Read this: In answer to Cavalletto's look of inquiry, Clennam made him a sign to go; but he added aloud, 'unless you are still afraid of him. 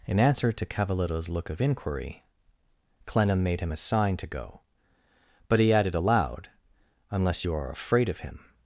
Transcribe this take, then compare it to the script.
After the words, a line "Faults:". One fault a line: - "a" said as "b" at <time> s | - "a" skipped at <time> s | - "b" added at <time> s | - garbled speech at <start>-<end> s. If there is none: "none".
In answer to Cavalletto's look of inquiry, Clennam made him a sign to go; but he added aloud, 'unless you are afraid of him.
Faults:
- "still" skipped at 7.7 s